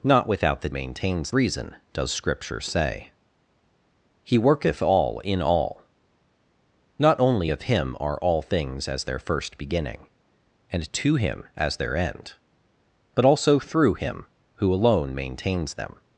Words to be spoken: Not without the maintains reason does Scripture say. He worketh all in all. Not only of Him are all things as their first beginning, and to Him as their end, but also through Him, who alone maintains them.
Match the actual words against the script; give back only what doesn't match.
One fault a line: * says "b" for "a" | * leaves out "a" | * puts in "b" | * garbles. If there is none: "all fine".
all fine